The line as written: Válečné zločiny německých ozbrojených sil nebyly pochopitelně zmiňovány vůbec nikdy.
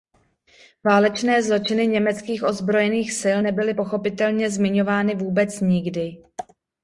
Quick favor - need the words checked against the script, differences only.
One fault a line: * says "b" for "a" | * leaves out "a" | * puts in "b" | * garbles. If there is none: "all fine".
all fine